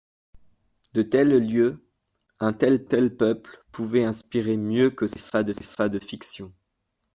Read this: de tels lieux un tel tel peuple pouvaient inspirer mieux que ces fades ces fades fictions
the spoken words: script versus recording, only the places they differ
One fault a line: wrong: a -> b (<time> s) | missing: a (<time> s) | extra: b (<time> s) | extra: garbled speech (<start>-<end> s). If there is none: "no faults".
no faults